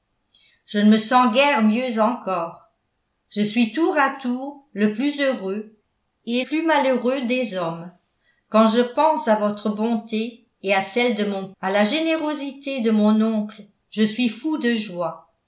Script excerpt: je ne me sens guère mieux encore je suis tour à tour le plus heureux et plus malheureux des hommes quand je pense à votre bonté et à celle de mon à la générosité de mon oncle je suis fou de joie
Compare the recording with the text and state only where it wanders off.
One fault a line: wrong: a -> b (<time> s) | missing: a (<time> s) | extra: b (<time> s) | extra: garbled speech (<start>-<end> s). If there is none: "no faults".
no faults